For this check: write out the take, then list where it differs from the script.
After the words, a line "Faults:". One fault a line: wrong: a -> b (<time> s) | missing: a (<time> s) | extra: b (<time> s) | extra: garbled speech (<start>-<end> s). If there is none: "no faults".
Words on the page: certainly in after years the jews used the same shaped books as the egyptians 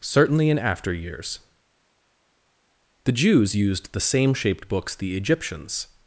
certainly in after years the jews used the same shaped books the egyptians
Faults:
missing: as (5.0 s)